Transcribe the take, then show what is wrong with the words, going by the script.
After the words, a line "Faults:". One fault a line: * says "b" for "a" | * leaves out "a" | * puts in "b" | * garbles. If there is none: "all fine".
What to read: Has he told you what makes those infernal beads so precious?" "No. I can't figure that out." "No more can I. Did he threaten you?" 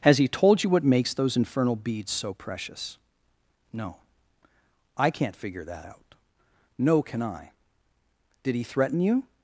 Has he told you what makes those infernal beads so precious?" "No. I can't figure that out." "No can I. Did he threaten you?"
Faults:
* leaves out "more"